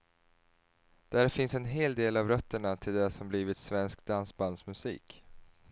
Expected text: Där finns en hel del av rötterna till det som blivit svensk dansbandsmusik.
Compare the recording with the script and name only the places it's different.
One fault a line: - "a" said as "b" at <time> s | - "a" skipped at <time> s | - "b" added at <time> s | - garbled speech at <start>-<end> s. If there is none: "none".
none